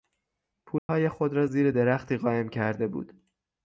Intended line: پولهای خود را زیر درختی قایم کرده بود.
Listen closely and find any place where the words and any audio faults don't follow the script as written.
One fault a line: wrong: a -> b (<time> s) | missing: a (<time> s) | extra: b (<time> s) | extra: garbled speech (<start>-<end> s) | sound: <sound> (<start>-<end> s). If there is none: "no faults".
sound: dropout (0.8-0.9 s)